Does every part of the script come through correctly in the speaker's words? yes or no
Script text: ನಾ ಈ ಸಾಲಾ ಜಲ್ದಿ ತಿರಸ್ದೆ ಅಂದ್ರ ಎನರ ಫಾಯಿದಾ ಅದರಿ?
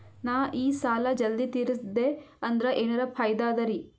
yes